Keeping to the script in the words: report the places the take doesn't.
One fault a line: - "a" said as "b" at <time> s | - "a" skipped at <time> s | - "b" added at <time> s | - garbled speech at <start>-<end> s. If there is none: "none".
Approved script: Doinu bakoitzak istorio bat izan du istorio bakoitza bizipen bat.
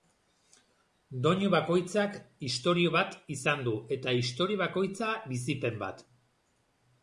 - "eta" added at 4.0 s